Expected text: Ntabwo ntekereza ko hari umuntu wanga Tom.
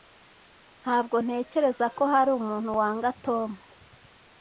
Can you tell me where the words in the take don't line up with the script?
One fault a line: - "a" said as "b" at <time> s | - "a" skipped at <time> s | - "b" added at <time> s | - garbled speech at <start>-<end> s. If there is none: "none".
none